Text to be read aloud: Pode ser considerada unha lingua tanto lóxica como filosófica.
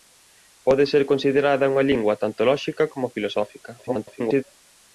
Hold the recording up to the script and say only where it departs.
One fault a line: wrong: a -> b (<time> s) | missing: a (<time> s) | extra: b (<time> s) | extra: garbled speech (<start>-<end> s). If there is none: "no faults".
extra: garbled speech (3.8-4.4 s)